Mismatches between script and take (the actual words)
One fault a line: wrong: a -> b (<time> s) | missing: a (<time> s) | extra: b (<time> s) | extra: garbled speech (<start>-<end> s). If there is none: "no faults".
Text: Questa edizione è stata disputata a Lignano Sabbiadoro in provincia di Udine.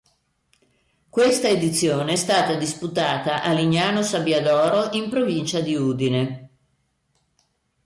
no faults